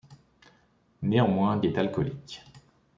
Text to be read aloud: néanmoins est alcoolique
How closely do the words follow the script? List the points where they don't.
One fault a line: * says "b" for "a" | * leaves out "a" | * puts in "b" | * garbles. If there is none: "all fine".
all fine